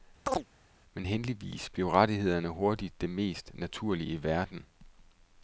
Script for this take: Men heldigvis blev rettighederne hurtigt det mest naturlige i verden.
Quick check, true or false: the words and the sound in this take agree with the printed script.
false